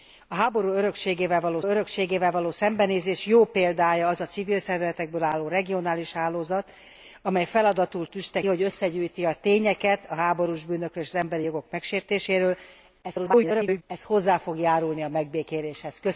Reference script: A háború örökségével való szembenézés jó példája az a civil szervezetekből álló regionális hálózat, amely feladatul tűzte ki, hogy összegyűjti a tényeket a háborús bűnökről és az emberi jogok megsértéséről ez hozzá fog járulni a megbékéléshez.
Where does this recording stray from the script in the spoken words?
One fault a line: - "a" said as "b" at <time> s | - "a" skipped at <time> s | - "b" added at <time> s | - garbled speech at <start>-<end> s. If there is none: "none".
- "örökségével való" added at 1.6 s
- "ki" skipped at 8.4 s
- garbled speech at 13.0-13.8 s